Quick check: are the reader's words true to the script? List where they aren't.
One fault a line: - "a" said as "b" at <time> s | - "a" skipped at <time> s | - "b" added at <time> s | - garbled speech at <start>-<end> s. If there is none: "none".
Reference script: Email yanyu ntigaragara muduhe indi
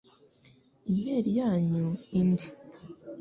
- "ntigaragara muduhe" skipped at 1.9 s